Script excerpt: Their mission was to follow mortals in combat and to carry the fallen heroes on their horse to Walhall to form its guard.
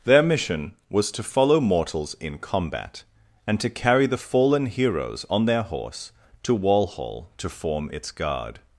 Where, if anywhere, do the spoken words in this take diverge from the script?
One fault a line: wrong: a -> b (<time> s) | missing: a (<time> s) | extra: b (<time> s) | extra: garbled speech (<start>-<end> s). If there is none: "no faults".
no faults